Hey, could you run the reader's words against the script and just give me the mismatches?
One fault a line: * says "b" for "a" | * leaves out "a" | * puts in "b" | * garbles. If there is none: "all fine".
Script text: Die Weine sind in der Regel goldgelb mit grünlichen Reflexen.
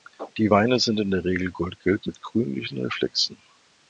all fine